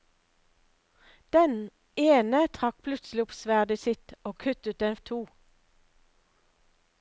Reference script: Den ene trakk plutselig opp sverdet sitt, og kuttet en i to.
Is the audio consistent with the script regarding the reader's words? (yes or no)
yes